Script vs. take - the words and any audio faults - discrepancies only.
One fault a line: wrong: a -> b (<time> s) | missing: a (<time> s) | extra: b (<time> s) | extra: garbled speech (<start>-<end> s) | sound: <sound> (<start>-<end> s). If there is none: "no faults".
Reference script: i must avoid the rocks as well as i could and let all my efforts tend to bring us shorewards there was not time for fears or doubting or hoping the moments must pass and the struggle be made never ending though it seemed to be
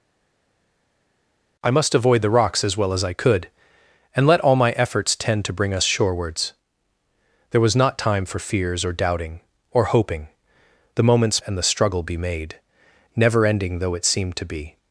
missing: must pass (11.4 s)